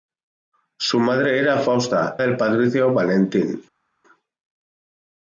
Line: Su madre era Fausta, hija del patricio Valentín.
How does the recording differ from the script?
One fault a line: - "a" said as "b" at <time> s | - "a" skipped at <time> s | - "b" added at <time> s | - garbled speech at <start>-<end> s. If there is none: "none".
- "hija" skipped at 2.2 s